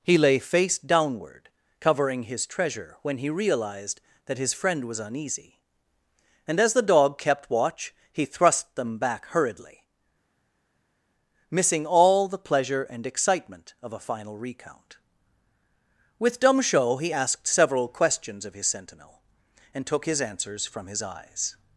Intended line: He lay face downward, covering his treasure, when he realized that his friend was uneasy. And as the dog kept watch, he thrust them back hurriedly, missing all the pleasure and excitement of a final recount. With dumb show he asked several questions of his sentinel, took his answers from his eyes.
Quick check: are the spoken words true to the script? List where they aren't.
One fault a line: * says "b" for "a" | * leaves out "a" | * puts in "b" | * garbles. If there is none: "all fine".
* puts in "and"